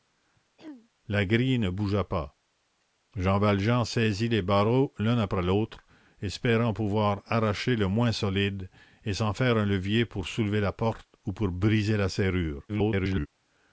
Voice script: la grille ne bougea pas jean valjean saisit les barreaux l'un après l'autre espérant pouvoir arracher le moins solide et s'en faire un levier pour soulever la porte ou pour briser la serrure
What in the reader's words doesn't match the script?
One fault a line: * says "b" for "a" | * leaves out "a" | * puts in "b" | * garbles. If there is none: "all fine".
* garbles